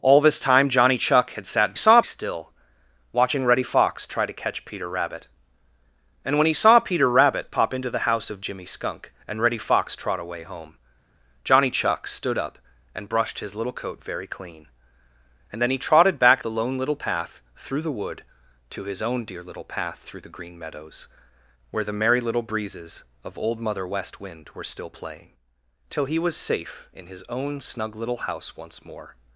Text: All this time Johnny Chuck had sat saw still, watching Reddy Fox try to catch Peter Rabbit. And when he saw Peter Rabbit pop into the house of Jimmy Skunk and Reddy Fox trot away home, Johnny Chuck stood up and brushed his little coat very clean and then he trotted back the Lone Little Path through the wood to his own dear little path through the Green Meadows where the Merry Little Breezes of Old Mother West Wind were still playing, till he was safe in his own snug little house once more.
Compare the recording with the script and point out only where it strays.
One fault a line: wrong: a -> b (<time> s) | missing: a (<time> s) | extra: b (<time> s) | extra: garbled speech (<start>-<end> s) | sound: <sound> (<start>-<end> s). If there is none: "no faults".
no faults